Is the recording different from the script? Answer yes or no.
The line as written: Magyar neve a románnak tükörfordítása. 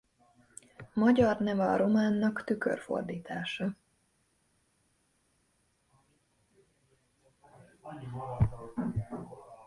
no